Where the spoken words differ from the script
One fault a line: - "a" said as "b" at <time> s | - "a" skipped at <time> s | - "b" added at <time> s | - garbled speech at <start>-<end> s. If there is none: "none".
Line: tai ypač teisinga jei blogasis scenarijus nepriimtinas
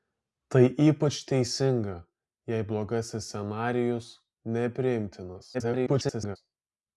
- garbled speech at 5.5-6.4 s